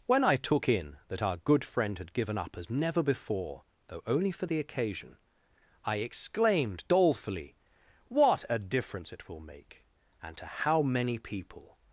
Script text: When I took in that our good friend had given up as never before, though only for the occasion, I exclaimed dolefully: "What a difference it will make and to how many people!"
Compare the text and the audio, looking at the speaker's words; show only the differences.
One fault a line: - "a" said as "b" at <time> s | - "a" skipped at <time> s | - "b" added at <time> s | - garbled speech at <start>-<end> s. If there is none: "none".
none